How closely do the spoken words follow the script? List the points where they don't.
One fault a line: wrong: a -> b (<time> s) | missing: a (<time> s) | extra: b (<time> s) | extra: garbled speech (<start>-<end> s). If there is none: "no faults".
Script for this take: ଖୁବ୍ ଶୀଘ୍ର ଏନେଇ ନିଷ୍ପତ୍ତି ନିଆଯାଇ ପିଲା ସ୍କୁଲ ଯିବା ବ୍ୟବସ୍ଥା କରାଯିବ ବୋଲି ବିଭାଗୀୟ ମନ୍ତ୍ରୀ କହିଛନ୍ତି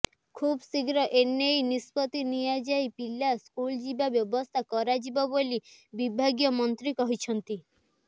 no faults